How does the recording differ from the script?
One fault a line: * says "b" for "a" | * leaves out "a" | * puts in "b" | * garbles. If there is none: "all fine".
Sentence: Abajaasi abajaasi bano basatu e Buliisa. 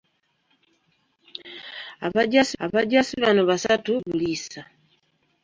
all fine